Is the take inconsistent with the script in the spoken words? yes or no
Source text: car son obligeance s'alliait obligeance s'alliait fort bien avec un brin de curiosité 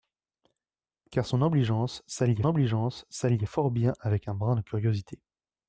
no